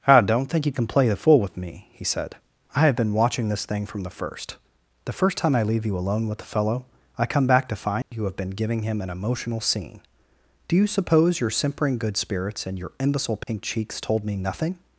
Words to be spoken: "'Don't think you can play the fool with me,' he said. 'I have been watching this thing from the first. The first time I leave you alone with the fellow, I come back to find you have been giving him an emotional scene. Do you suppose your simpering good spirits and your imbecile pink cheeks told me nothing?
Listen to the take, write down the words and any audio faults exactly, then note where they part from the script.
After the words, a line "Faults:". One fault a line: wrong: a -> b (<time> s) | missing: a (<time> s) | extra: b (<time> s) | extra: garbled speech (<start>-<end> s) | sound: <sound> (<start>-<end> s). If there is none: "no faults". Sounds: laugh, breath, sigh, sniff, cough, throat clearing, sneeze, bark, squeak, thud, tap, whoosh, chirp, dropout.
I "'Don't think you can play the fool with me,' he said. 'I have been watching this thing from the first. The first time I leave you alone with the fellow, I come back to find you have been giving him an emotional scene. Do you suppose your simpering good spirits and your imbecile pink cheeks told me nothing?
Faults:
extra: I (0.1 s)
sound: dropout (8.0-8.1 s)
sound: dropout (13.4-13.5 s)